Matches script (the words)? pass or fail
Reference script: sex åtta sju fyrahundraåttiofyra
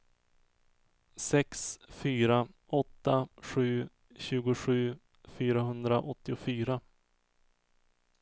fail